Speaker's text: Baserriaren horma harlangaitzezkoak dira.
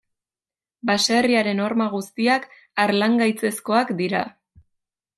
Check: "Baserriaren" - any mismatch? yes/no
no